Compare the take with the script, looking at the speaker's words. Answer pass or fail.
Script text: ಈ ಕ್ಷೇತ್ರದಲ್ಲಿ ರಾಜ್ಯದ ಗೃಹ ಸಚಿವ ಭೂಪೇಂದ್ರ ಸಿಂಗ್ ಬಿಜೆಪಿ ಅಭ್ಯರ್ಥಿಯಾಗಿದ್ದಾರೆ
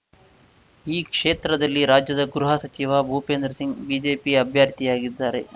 pass